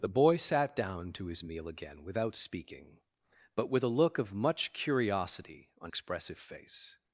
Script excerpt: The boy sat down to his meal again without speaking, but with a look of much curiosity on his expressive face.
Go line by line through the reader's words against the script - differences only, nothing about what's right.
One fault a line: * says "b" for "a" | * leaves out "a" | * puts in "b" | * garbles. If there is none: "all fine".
* leaves out "his"